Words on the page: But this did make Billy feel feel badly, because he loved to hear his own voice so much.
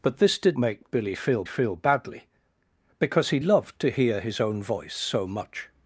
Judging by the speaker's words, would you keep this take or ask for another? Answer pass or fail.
pass